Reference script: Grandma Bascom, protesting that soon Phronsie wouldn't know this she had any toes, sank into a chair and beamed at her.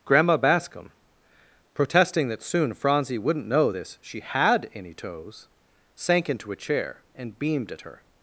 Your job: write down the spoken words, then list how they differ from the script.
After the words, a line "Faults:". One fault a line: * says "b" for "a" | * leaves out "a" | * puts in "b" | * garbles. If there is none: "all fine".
Grandma Bascom, protesting that soon Phronsie wouldn't know this she had any toes, sank into a chair and beamed at her.
Faults:
all fine